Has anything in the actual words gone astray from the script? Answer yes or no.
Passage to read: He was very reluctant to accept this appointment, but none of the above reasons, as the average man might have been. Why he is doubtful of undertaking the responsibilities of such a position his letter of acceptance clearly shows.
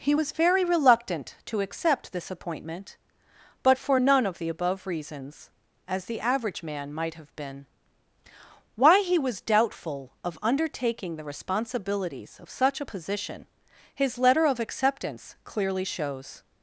yes